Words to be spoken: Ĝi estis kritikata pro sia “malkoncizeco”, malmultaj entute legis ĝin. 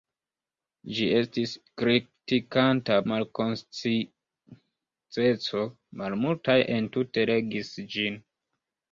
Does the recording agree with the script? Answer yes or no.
no